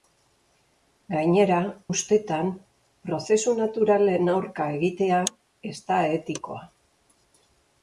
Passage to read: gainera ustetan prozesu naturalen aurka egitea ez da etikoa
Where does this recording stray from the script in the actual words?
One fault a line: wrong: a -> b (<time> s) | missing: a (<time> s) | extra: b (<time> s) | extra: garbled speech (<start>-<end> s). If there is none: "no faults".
no faults